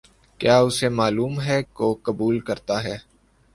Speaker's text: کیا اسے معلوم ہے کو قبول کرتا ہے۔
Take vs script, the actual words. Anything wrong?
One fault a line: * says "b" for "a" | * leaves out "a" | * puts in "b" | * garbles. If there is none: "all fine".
all fine